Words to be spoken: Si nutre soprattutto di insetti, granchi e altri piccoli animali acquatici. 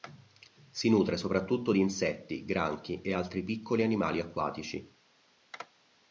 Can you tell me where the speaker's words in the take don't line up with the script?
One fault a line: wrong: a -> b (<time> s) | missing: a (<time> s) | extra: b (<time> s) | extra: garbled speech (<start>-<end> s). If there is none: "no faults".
no faults